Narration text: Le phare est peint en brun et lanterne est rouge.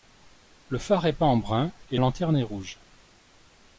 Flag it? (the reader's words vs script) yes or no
no